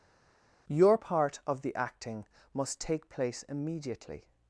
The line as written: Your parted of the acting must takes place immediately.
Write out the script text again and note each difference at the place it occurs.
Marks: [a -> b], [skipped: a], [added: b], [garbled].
Your [parted -> part] of the acting must [takes -> take] place immediately.